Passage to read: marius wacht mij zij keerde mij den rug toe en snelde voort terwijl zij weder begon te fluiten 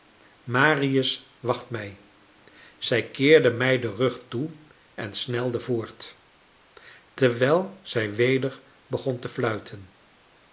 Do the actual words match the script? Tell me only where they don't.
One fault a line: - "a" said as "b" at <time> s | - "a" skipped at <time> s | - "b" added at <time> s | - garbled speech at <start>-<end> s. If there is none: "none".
none